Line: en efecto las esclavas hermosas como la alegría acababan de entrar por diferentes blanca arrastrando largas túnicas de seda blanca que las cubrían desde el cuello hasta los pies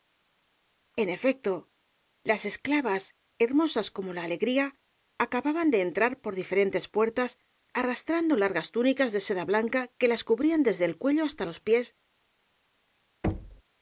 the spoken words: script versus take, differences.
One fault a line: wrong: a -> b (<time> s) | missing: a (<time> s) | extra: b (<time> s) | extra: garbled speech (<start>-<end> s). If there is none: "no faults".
wrong: blanca -> puertas (6.8 s)